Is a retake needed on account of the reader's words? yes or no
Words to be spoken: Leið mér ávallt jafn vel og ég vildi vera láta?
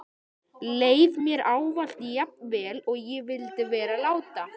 no